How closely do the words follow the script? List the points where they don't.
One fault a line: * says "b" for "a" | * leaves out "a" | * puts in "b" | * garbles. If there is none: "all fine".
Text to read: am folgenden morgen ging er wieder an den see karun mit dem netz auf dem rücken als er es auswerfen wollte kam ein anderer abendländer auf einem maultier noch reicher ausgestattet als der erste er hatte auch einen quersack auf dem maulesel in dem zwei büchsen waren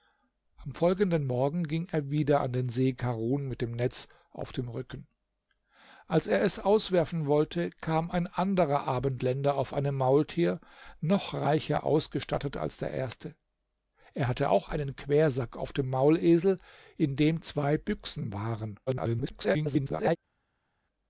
* garbles